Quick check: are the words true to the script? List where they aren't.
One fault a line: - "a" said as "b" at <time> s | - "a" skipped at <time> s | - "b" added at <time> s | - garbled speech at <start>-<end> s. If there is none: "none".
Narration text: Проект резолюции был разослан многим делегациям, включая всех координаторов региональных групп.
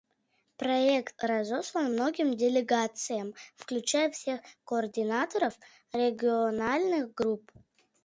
- "резолюции был" skipped at 1.1 s